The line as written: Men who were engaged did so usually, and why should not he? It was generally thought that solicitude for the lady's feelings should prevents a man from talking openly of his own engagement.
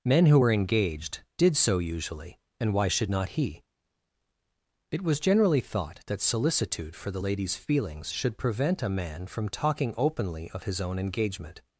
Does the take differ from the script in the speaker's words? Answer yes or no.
yes